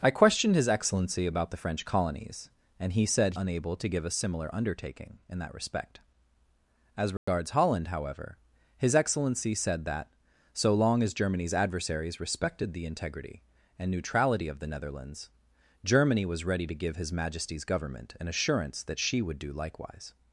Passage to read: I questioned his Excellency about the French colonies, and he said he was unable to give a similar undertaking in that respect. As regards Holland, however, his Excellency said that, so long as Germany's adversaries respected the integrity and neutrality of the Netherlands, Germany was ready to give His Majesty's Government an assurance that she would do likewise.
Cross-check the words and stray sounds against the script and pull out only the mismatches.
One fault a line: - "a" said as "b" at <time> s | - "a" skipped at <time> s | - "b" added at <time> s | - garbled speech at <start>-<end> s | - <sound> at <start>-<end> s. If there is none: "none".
- "he was" skipped at 3.4 s
- dropout at 7.2-7.3 s